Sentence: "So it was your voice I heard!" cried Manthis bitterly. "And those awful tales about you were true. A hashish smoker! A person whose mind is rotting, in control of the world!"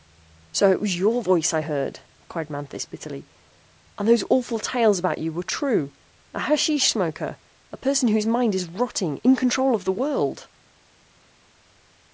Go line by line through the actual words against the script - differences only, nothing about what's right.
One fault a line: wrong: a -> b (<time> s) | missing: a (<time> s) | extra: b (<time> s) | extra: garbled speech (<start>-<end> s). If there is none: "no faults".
no faults